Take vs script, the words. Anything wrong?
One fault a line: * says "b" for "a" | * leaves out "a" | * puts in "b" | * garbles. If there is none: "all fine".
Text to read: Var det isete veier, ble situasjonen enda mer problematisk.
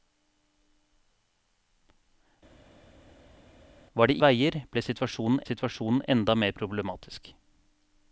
* leaves out "isete"
* puts in "situasjonen"